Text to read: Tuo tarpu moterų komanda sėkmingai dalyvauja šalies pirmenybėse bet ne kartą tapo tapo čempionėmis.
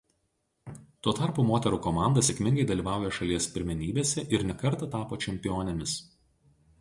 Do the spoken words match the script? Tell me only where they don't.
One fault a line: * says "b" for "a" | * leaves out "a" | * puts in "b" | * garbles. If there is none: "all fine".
* says "ir" for "bet"
* leaves out "tapo"